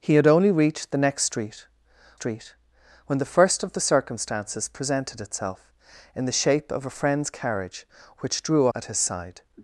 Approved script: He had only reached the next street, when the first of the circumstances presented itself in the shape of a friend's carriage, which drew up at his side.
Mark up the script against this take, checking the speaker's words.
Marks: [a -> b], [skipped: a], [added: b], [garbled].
He had only reached the next street, [added: street] when the first of the circumstances presented itself in the shape of a friend's carriage, which drew [skipped: up] at his side.